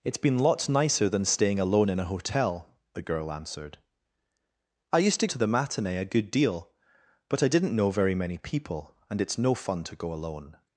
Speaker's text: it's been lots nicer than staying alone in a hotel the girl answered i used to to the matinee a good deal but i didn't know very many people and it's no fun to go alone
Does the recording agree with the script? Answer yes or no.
yes